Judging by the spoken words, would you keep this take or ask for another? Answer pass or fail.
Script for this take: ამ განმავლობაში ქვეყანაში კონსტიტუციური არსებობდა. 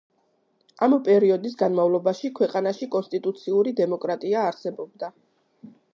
fail